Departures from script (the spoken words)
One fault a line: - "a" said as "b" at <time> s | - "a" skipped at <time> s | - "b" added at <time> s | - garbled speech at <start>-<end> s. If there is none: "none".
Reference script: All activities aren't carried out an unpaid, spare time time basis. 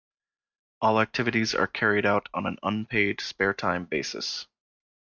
- "aren't" said as "are" at 1.5 s
- "on" added at 2.3 s
- "time" skipped at 3.8 s